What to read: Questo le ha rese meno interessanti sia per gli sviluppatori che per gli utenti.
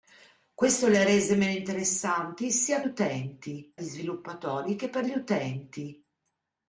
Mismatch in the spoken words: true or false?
true